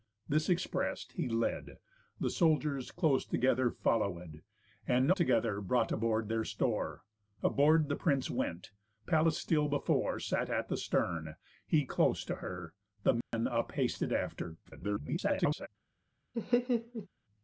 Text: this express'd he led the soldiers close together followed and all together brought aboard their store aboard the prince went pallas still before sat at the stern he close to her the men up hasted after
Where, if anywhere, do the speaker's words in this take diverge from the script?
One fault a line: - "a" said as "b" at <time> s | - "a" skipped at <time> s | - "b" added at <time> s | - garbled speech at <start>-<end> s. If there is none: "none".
- "all" skipped at 5.1 s
- garbled speech at 14.6-15.7 s